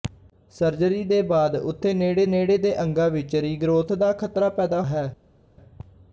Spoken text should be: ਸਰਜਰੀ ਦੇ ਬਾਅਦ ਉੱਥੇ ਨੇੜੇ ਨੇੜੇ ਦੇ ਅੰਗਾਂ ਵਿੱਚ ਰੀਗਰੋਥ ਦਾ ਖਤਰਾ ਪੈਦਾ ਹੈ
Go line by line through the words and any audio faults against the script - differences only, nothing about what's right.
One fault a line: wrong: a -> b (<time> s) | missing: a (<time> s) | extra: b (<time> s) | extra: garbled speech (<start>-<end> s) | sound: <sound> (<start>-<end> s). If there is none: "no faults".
no faults